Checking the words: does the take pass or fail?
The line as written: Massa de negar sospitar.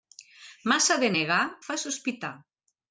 fail